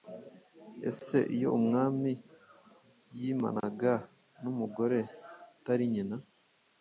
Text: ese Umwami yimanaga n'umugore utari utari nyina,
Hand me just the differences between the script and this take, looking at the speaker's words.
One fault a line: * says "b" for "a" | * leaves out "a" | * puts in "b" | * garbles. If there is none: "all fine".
* puts in "iyo"
* leaves out "utari"